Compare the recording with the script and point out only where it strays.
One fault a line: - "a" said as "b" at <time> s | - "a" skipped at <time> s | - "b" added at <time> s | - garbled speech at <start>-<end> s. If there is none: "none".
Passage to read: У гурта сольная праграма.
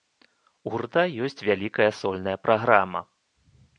- "ёсць вялікая" added at 1.3 s